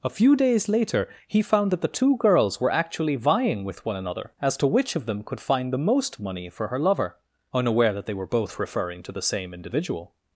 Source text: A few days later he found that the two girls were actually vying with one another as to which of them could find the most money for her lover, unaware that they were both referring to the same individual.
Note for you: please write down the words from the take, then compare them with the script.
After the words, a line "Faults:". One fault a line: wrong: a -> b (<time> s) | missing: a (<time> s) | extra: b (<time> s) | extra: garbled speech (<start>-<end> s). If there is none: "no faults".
A few days later he found that the two girls were actually vying with one another as to which of them could find the most money for her lover, unaware that they were both referring to the same individual.
Faults:
no faults